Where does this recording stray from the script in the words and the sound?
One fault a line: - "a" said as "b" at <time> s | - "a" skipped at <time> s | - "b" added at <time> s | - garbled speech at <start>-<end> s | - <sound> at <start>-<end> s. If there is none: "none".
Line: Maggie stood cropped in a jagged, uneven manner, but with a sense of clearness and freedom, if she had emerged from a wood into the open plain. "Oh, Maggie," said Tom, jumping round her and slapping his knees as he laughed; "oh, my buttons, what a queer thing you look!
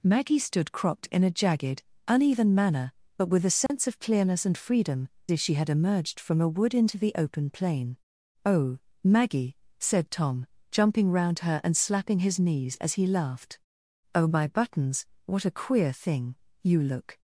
- dropout at 3.7-3.7 s